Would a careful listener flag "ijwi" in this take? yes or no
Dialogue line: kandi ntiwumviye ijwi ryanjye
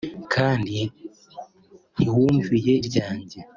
yes